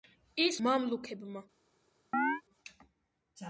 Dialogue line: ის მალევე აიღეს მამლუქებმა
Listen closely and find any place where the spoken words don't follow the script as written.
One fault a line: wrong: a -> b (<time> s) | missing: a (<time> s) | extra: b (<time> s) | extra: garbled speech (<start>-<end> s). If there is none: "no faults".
missing: მალევე აიღეს (0.6 s)